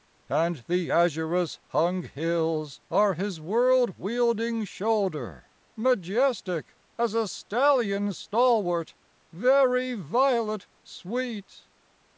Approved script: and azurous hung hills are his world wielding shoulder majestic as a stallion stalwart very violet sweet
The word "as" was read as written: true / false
true